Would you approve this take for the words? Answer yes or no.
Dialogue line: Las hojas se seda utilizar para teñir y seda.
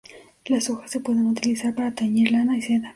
no